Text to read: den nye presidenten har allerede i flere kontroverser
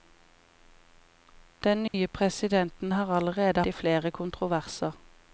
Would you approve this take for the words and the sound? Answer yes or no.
no